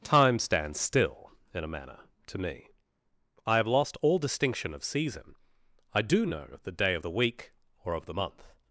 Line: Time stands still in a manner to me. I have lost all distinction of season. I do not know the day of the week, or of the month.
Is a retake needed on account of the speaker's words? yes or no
yes